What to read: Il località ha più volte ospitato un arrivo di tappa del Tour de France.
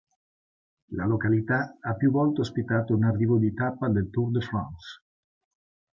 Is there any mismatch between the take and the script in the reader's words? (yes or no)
yes